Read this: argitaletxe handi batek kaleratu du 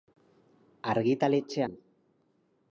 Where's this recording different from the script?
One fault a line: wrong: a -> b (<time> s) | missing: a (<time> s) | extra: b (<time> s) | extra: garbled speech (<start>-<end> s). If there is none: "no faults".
missing: handi batek kaleratu (1.6 s)